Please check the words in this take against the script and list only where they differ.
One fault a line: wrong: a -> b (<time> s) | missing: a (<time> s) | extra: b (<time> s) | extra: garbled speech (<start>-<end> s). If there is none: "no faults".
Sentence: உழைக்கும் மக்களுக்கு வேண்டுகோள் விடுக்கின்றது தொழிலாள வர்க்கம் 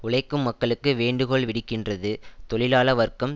no faults